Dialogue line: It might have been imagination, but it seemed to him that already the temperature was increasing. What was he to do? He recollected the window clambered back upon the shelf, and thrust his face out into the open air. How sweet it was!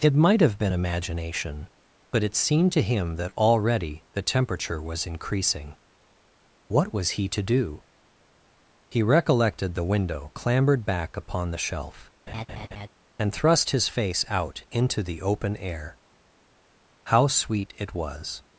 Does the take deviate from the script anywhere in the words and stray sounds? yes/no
yes